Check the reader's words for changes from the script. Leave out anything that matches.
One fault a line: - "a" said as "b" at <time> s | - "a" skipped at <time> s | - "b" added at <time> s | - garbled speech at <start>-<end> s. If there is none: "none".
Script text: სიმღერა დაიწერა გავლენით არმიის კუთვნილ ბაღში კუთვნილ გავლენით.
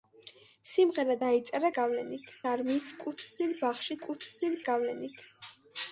none